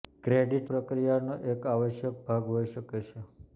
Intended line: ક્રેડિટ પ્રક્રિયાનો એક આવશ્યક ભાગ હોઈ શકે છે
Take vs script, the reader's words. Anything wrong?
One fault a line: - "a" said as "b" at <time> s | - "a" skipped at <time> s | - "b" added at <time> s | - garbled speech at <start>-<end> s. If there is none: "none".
none